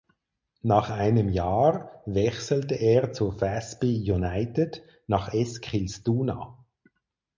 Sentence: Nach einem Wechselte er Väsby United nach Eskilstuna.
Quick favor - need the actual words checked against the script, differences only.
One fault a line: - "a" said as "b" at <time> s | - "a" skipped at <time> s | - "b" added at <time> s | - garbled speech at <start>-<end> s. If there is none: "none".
- "Jahr" added at 1.3 s
- "zu" added at 3.1 s